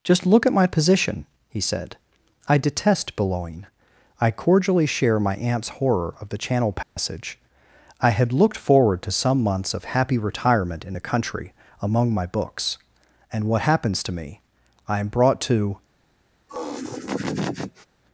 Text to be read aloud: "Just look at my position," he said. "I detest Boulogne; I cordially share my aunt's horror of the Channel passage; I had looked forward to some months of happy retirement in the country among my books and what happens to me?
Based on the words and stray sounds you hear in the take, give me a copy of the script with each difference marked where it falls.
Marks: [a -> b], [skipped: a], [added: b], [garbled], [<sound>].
"Just look at my position," he said. "I detest Boulogne; I cordially share my aunt's horror of the Channel passage; [dropout] I had looked forward to some months of happy retirement in the country among my books and what happens to me? [added: I am brought to] [laugh]